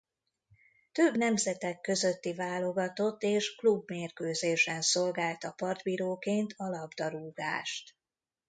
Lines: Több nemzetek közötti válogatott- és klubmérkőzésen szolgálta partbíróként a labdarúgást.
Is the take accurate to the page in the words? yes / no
yes